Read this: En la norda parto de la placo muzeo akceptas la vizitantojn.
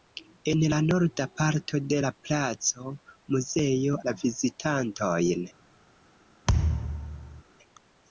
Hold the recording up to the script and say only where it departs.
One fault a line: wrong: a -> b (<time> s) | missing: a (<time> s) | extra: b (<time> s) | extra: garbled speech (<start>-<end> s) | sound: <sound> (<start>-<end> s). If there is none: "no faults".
missing: akceptas (4.0 s)
sound: thud (6.5-7.4 s)